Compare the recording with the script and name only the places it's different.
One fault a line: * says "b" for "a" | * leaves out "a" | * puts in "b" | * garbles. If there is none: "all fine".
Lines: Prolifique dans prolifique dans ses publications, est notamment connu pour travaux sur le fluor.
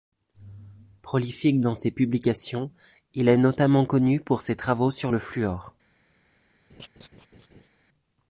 * leaves out "prolifique dans"
* puts in "il"
* puts in "ses"